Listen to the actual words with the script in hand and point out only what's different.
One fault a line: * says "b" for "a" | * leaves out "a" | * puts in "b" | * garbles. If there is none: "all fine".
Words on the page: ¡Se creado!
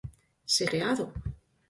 all fine